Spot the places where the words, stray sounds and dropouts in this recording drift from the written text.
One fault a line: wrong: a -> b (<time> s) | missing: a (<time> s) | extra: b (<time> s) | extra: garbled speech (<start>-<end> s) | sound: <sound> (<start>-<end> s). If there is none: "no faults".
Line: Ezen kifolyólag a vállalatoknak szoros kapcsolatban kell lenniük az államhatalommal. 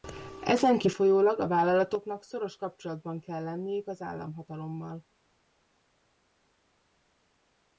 no faults